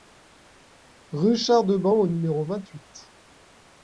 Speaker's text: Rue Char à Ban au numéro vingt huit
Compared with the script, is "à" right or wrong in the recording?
wrong